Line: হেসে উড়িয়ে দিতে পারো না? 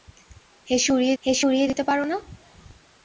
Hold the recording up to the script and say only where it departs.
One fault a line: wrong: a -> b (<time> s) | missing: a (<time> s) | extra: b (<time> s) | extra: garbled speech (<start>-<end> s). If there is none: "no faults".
extra: হেসে উড়িয়ে (1.2 s)